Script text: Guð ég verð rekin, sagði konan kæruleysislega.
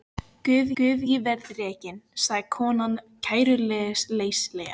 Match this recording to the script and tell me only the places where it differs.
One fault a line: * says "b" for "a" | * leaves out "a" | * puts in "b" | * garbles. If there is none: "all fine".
* puts in "guð"